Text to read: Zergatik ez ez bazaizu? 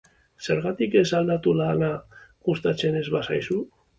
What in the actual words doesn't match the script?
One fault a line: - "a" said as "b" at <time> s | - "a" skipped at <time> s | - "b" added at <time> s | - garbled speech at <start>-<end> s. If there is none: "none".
- "aldatu lana gustatzen" added at 1.2 s